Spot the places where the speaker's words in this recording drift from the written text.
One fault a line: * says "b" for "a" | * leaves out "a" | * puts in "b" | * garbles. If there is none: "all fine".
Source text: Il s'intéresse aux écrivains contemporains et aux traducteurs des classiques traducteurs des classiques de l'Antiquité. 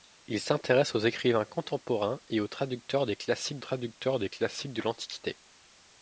all fine